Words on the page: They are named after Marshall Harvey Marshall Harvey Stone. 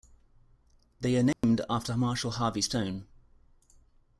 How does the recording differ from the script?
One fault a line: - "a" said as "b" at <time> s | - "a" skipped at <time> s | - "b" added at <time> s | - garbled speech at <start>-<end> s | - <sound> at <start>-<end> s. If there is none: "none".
- dropout at 1.3-1.4 s
- "Marshall Harvey" skipped at 2.6 s